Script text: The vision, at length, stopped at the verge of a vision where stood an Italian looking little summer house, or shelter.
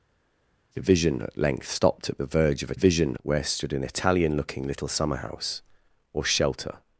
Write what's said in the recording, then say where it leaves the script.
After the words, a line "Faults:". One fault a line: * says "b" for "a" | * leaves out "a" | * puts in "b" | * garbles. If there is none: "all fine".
The vision, at length, stopped at the verge of a vision where stood an Italian looking little summer house, or shelter.
Faults:
all fine